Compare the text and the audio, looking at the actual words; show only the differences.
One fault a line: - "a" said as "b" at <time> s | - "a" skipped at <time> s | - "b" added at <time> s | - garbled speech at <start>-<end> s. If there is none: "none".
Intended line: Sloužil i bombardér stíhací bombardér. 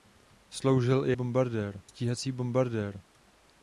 none